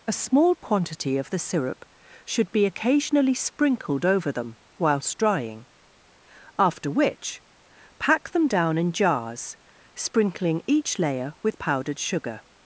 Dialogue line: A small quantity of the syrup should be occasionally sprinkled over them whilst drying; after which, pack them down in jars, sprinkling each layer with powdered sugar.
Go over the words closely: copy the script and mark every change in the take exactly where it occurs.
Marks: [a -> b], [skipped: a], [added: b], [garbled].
A small quantity of the syrup should be occasionally sprinkled over them whilst drying; after which, pack them down in jars, sprinkling each layer with powdered sugar.